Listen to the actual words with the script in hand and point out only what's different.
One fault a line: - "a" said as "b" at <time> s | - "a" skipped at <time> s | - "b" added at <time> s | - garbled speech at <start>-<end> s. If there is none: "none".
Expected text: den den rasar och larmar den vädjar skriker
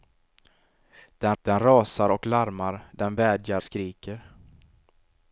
none